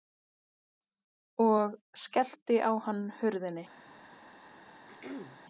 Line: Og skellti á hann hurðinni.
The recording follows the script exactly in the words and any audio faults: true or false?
false